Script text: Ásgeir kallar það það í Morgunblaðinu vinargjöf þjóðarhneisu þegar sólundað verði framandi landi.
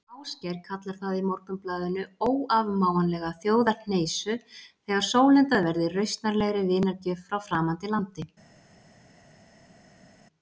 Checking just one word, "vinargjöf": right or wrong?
wrong